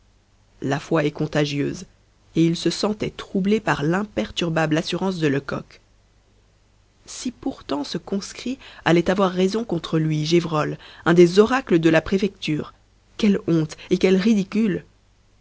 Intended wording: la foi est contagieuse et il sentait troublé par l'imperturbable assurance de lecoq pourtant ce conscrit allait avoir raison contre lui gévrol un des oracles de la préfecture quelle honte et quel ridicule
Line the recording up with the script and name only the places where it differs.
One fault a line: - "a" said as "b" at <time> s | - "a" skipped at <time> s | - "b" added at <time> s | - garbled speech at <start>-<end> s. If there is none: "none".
- "se" added at 2.5 s
- "si" added at 7.0 s